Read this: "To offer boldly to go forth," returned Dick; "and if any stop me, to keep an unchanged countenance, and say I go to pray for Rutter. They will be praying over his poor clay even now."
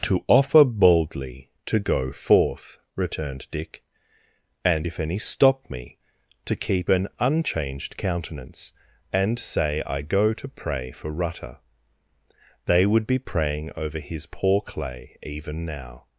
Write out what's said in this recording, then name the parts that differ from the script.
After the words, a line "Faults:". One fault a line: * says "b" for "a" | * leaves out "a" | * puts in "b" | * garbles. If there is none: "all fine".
"To offer boldly to go forth," returned Dick; "and if any stop me, to keep an unchanged countenance, and say I go to pray for Rutter. They would be praying over his poor clay even now."
Faults:
* says "would" for "will"